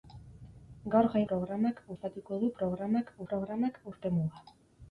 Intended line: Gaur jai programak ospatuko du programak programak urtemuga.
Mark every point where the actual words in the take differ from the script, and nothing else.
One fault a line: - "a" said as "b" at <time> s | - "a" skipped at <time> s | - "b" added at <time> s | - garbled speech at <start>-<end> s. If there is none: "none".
none